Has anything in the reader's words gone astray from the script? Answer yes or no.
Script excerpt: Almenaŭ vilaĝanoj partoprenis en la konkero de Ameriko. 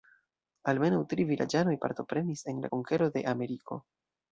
yes